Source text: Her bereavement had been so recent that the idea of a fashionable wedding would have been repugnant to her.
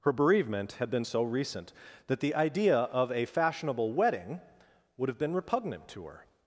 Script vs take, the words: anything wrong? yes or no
no